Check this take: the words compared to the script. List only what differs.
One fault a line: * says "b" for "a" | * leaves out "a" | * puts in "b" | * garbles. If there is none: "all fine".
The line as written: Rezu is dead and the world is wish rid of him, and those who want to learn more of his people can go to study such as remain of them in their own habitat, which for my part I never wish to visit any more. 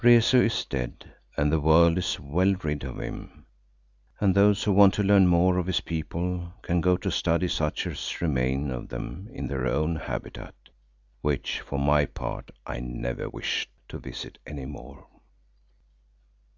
* says "well" for "wish"